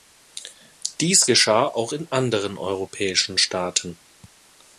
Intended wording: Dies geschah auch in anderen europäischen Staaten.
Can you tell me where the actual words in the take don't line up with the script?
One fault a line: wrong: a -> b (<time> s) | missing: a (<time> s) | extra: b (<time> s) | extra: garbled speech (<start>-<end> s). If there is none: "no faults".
no faults